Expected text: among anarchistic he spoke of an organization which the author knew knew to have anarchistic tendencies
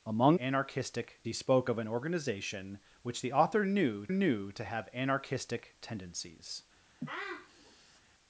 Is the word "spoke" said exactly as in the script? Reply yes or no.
yes